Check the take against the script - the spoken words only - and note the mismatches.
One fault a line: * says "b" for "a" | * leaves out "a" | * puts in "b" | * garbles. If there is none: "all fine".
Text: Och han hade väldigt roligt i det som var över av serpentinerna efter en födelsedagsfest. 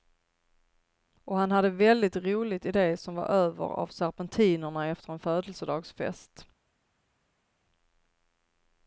all fine